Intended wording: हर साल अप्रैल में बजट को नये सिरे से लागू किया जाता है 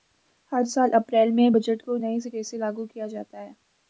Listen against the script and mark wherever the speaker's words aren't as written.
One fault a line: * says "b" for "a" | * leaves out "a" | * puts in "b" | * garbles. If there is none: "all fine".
all fine